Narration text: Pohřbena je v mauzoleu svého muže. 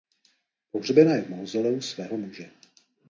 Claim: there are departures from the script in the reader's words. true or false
false